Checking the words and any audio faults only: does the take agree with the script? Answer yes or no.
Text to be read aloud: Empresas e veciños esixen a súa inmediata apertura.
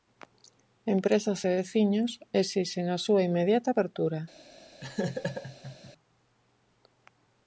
no